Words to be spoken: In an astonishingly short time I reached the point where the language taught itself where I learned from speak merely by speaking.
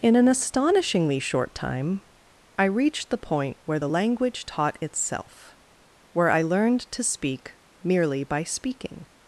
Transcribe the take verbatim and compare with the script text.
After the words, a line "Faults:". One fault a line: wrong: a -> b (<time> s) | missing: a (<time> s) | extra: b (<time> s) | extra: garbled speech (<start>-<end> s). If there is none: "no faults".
In an astonishingly short time I reached the point where the language taught itself where I learned to speak merely by speaking.
Faults:
wrong: from -> to (6.9 s)